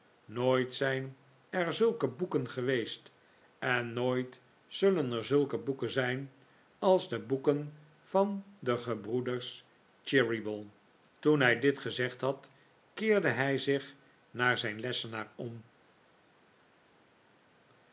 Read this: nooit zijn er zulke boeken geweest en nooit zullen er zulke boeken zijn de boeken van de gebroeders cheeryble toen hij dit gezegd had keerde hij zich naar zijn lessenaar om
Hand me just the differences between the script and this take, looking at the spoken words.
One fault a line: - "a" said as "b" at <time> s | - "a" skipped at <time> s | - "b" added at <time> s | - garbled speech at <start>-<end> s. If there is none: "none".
- "als" added at 6.8 s